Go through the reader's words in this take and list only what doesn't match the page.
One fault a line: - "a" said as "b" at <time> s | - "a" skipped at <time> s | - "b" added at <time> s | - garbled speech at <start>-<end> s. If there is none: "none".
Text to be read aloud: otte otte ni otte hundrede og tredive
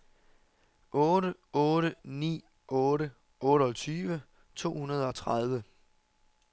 - "otteogtyve to" added at 3.4 s